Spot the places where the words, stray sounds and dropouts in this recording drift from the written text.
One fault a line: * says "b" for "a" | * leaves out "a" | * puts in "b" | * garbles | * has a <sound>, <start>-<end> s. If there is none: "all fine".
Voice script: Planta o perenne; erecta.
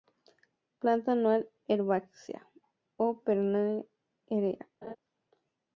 * puts in "anual herbácea"
* has a laugh, 4.8-5.0 s